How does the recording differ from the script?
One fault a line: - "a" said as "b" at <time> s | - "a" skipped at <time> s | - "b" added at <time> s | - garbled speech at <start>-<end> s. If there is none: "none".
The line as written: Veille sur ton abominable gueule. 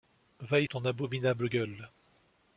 - "sur" skipped at 0.7 s